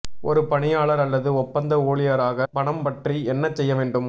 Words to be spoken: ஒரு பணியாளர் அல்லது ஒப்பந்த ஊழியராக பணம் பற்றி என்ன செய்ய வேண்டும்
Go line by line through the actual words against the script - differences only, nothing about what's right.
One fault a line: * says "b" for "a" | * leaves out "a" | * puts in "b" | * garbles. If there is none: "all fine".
all fine